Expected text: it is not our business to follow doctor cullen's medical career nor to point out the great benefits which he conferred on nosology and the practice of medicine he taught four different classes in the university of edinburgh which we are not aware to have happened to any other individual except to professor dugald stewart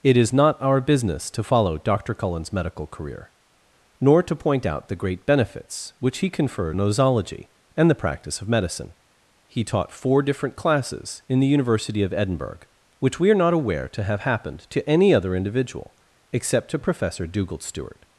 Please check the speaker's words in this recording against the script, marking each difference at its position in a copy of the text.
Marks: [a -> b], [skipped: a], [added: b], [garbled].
it is not our business to follow doctor cullen's medical career nor to point out the great benefits which he conferred [skipped: on] nosology and the practice of medicine he taught four different classes in the university of edinburgh which we are not aware to have happened to any other individual except to professor dugald stewart